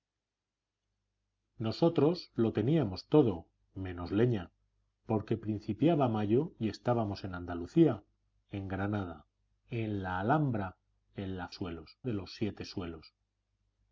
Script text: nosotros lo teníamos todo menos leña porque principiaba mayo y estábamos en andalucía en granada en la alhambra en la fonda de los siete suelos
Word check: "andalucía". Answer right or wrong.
right